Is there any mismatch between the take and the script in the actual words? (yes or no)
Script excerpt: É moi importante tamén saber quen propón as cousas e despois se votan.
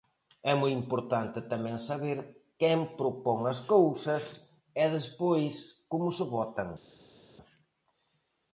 yes